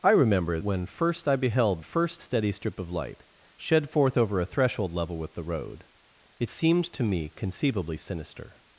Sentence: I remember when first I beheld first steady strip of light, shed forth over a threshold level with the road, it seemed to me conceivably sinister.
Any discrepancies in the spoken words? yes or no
no